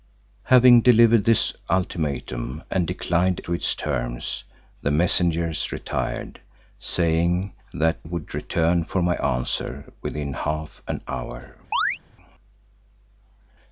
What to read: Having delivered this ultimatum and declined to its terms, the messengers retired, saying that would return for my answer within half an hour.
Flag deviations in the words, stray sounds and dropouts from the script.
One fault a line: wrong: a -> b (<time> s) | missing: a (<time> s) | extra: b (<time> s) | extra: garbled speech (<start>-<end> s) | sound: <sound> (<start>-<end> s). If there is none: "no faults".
sound: chirp (11.7-12.0 s)